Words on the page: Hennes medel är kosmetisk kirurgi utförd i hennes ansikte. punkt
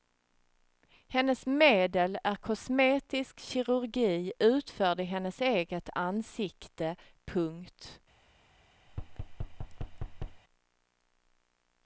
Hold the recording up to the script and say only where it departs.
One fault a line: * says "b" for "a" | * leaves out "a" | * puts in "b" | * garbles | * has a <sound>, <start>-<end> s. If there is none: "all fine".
* puts in "eget"
* has a thud, 8.9-10.4 s